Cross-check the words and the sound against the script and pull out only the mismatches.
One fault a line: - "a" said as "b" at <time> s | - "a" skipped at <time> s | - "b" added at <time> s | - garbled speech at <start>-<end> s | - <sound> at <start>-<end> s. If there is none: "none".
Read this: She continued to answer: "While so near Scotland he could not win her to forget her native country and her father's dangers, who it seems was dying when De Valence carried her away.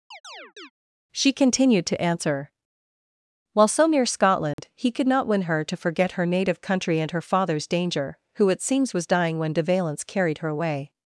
- chirp at 0.1-0.7 s
- dropout at 4.5-4.6 s
- "dangers" said as "danger" at 7.7 s